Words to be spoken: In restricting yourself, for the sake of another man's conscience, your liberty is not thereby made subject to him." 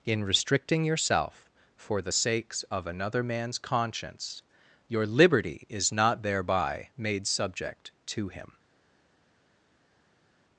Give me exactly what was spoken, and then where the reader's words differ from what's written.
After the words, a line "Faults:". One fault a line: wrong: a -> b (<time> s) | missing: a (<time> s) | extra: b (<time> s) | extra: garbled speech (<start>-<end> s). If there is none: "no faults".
In restricting yourself, for the sakes of another man's conscience, your liberty is not thereby made subject to him."
Faults:
wrong: sake -> sakes (2.1 s)